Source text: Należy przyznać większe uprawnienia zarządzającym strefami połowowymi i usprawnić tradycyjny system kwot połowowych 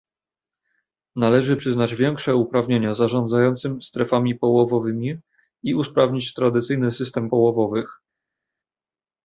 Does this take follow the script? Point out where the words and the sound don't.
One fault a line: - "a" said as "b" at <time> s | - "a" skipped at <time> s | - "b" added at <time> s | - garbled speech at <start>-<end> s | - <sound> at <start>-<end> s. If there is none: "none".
- "kwot" skipped at 7.3 s